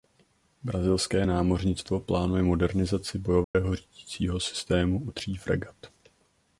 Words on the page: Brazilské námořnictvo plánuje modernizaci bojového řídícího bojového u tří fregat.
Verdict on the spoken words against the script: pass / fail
fail